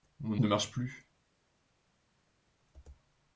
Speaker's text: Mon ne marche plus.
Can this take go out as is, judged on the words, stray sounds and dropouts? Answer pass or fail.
pass